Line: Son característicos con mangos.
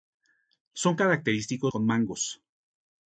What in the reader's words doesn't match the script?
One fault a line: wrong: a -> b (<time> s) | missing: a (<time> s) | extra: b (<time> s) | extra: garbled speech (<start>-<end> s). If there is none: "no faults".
no faults